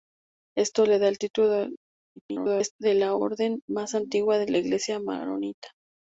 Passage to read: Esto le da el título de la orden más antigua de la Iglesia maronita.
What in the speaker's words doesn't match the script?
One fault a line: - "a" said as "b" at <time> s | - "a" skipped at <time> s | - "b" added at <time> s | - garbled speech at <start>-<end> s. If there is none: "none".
- garbled speech at 2.2-2.7 s